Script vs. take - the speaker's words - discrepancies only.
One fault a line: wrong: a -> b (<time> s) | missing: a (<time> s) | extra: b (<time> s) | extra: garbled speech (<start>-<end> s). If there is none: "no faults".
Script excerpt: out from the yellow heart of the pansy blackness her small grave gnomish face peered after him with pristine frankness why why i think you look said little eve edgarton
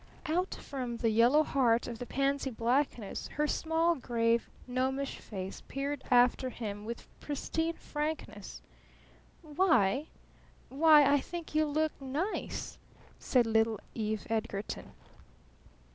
extra: nice (12.0 s)